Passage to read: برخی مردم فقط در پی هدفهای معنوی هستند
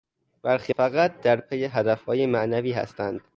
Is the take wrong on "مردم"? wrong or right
wrong